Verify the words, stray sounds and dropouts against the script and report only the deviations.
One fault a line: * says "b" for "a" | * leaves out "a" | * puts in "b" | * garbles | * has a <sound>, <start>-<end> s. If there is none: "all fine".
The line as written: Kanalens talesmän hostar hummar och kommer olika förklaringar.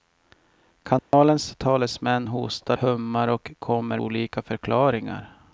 * has a dropout, 1.0-1.1 s